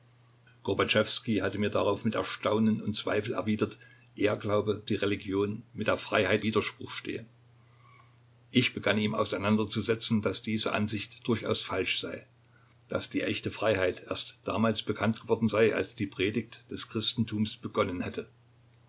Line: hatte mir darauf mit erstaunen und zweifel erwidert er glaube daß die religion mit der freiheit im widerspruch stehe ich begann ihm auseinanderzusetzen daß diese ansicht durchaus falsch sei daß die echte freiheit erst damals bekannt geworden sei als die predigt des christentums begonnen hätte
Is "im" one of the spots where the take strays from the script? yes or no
yes